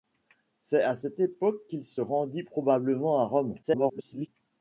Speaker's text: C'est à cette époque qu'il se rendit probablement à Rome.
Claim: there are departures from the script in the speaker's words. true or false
true